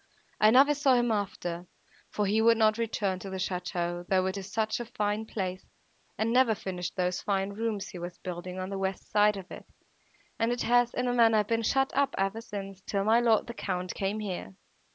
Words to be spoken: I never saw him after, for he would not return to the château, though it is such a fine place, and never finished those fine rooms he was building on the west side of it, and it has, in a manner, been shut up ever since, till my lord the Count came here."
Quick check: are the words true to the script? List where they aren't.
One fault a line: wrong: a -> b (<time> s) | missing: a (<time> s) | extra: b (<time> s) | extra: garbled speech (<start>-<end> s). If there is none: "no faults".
no faults